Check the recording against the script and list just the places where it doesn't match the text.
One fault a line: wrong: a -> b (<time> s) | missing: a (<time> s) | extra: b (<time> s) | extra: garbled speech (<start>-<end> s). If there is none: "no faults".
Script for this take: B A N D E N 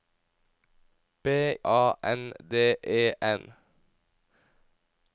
no faults